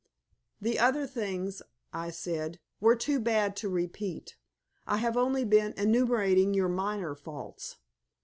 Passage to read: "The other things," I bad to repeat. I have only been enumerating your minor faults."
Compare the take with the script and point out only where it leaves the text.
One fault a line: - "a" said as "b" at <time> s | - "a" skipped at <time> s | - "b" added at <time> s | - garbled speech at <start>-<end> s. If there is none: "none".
- "said were too" added at 2.1 s